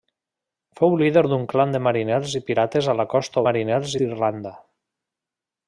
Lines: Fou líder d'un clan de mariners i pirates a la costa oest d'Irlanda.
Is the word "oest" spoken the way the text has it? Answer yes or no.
no